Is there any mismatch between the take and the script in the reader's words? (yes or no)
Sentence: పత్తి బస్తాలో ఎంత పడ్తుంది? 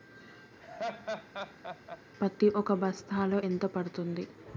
yes